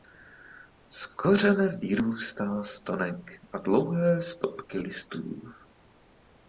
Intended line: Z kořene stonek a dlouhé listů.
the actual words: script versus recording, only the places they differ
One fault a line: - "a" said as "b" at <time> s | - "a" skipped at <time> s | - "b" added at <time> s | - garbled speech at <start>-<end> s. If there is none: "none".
- "vyrůstá" added at 1.8 s
- "stopky" added at 4.2 s